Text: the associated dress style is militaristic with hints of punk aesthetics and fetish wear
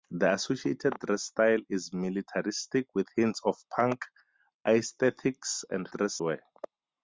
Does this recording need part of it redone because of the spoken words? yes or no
yes